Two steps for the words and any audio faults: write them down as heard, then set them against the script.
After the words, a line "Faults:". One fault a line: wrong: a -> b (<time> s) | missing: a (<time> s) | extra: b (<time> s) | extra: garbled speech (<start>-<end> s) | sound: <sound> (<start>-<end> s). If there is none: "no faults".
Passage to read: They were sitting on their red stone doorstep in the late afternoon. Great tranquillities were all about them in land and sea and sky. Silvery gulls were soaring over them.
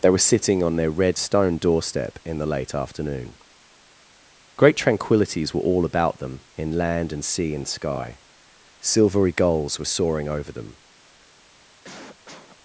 They were sitting on their red stone doorstep in the late afternoon. Great tranquillities were all about them in land and sea and sky. Silvery gulls were soaring over them.
Faults:
sound: cough (11.8-12.6 s)